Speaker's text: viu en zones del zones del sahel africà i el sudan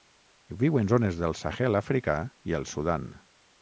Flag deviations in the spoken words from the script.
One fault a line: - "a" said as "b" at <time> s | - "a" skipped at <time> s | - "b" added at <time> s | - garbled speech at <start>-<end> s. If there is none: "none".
- "zones del" skipped at 1.4 s